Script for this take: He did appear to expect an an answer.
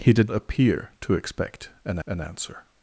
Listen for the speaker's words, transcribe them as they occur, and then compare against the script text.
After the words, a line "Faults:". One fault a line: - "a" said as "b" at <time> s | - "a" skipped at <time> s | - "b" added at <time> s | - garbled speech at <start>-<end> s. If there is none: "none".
He did appear to expect an an answer.
Faults:
none